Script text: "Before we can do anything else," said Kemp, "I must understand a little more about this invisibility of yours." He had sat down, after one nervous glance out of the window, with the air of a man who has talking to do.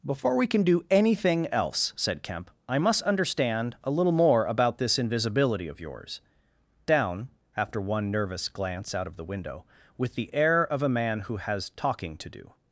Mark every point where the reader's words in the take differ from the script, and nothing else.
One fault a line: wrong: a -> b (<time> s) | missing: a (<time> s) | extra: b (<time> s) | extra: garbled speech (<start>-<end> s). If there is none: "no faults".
missing: He had sat (6.2 s)